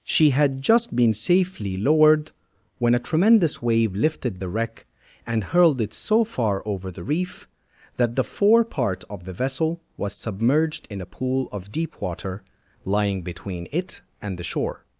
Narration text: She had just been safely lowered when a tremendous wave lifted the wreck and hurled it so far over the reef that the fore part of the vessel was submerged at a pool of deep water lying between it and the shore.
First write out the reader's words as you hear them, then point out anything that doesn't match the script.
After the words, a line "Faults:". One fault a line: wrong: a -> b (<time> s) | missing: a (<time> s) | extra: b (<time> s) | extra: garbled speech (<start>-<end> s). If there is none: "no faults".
She had just been safely lowered when a tremendous wave lifted the wreck and hurled it so far over the reef that the fore part of the vessel was submerged in a pool of deep water lying between it and the shore.
Faults:
wrong: at -> in (10.9 s)